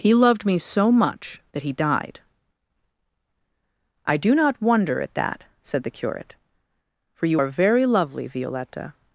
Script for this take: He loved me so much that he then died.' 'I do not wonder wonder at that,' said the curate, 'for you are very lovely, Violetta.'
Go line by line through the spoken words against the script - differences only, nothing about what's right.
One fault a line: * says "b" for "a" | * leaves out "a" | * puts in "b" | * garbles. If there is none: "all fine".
* leaves out "then"
* leaves out "wonder"